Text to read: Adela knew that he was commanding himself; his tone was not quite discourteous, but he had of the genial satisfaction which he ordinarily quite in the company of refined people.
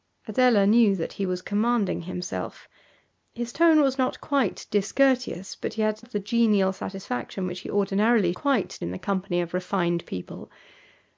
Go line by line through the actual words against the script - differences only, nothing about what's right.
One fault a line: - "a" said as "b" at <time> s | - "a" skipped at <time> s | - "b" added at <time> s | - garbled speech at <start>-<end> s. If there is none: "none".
none